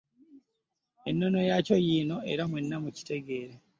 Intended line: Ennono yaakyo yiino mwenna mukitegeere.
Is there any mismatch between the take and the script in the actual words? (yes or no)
yes